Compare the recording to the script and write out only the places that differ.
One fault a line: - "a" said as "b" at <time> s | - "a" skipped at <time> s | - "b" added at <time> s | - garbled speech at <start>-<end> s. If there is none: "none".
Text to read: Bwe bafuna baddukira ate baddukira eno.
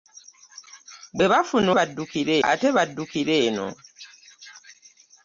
none